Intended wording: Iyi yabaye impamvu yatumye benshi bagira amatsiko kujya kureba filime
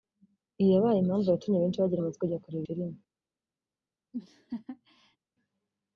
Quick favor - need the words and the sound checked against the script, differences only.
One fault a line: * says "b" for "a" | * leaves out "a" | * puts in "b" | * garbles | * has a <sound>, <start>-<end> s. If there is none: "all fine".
* has a laugh, 4.1-5.2 s